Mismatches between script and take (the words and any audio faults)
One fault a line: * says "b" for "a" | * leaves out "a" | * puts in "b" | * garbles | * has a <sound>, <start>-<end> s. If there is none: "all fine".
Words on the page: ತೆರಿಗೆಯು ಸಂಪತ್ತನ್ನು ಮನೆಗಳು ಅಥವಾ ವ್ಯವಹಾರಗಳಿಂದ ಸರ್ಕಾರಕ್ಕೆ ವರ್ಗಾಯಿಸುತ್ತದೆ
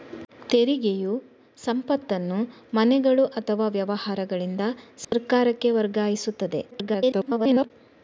* has a dropout, 5.0-5.1 s
* garbles